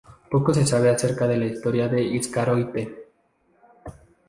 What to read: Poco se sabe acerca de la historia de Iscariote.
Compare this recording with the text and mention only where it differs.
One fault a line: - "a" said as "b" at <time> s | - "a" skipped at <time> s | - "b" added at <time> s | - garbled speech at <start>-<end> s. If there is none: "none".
none